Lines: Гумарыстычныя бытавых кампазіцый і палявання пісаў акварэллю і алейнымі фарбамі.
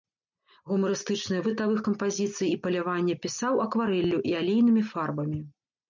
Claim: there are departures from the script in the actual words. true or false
false